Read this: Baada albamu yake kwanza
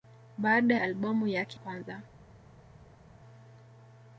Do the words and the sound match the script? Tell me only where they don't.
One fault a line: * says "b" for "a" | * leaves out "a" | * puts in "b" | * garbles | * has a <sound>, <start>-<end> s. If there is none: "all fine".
all fine